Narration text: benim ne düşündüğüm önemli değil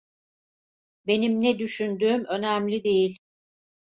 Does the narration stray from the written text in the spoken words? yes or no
no